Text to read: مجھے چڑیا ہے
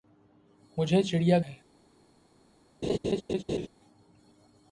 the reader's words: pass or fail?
pass